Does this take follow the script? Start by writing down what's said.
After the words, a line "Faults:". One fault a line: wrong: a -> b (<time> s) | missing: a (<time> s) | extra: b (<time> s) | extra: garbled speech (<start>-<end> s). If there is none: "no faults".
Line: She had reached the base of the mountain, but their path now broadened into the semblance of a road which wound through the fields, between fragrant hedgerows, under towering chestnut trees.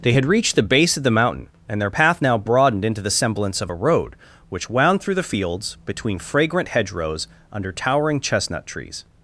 They had reached the base of the mountain, and their path now broadened into the semblance of a road which wound through the fields, between fragrant hedgerows, under towering chestnut trees.
Faults:
wrong: She -> They (0.0 s)
wrong: but -> and (1.7 s)